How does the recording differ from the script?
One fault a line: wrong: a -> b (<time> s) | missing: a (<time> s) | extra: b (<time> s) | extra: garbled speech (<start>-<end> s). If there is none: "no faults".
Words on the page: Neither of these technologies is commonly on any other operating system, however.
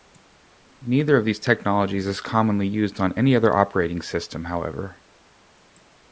extra: used (2.7 s)